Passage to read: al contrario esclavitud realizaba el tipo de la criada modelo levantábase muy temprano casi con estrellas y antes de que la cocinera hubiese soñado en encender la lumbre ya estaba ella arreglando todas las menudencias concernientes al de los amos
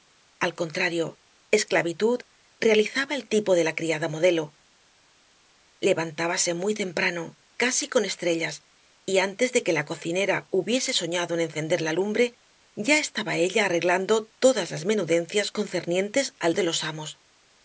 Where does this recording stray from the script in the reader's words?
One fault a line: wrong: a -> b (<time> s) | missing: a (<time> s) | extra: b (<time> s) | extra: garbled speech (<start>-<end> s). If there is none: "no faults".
no faults